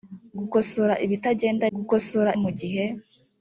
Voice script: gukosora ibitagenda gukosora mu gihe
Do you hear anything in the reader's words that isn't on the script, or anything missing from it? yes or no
no